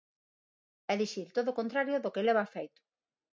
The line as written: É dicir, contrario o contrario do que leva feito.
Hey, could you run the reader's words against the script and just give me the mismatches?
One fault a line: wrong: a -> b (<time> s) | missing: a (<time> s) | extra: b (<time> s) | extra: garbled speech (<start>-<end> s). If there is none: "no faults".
wrong: contrario -> todo (1.3 s)